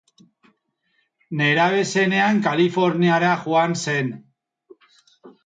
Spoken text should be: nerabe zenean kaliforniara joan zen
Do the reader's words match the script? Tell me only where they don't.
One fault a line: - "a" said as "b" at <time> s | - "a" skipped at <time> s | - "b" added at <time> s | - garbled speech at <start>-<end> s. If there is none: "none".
none